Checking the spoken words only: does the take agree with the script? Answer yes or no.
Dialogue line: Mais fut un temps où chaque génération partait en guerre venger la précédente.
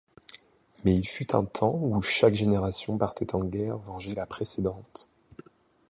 no